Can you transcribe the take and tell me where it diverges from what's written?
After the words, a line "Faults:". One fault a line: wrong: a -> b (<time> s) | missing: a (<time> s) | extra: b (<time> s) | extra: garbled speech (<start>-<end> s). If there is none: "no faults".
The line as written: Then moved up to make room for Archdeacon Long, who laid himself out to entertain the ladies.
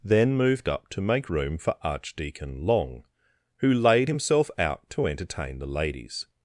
Then moved up to make room for Archdeacon Long, who laid himself out to entertain the ladies.
Faults:
no faults